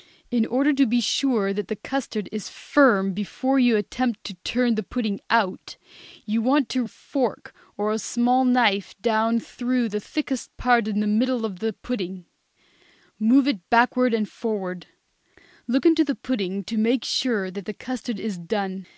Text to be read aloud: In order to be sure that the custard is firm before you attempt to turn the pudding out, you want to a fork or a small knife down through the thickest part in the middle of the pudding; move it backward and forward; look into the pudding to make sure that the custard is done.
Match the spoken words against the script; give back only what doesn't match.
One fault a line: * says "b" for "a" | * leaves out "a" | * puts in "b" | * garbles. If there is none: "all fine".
all fine